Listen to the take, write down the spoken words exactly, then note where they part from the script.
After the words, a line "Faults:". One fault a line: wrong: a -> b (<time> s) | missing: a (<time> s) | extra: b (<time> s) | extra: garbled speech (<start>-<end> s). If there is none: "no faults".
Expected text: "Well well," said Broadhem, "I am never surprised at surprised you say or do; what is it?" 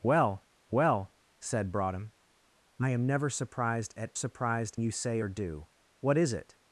"Well well," said Broadhem, "I am never surprised at surprised you say or do; what is it?"
Faults:
no faults